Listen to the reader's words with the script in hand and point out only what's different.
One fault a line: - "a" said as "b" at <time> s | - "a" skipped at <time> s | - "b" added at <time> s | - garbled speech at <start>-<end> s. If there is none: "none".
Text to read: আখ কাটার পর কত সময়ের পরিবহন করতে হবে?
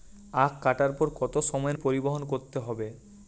none